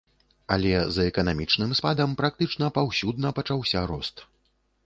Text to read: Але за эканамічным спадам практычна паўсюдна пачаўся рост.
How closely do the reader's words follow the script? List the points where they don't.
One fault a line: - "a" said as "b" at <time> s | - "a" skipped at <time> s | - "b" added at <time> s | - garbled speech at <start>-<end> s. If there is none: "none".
none